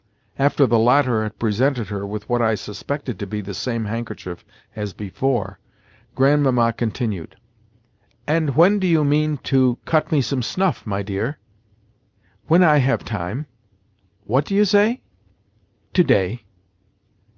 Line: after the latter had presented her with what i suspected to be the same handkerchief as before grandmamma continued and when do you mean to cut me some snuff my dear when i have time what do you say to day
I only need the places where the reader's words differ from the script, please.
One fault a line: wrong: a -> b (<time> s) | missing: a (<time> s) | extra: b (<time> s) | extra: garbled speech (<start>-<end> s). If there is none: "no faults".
no faults